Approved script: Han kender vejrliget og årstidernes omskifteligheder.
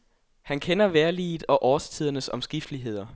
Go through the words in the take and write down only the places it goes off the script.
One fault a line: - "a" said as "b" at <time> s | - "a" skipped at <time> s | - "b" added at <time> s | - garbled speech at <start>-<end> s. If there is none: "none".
none